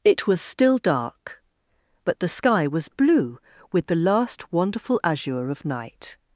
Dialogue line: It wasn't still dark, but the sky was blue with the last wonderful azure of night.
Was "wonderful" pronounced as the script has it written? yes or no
yes